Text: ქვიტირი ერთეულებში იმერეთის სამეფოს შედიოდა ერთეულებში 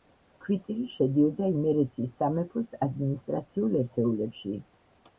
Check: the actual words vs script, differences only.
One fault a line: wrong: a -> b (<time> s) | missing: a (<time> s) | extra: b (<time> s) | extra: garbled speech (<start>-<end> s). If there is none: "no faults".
wrong: ერთეულებში -> შედიოდა (0.9 s)
wrong: შედიოდა -> ადმინისტრაციულ (2.9 s)